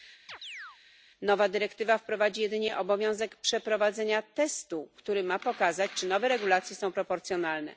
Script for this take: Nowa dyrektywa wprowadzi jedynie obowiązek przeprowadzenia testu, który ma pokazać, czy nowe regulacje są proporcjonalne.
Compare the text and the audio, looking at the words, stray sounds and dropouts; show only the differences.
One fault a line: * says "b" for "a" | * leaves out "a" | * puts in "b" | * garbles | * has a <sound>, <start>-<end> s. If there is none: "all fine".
* has a chirp, 0.3-0.8 s